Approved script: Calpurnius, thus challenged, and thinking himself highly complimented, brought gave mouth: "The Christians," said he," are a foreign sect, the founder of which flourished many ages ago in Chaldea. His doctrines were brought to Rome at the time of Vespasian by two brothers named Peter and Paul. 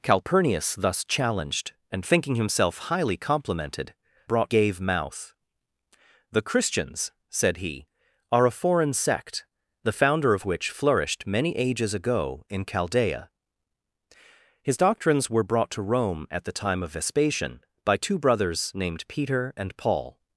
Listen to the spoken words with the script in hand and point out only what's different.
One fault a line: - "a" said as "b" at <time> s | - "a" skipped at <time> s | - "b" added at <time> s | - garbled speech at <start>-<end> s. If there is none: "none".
none